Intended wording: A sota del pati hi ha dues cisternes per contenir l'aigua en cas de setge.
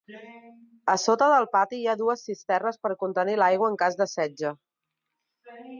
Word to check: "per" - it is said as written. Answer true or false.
true